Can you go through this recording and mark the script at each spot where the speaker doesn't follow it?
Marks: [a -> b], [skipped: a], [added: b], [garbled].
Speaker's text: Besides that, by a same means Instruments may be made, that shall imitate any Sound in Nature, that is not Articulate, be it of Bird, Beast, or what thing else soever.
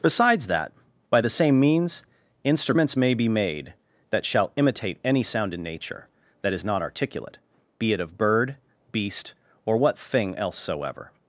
Besides that, by [a -> the] same means Instruments may be made, that shall imitate any Sound in Nature, that is not Articulate, be it of Bird, Beast, or what thing else soever.